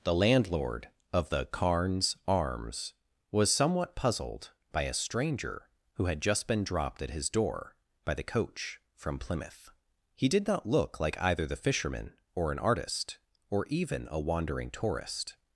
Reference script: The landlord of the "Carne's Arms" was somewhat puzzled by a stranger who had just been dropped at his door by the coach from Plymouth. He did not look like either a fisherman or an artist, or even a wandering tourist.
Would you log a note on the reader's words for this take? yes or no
yes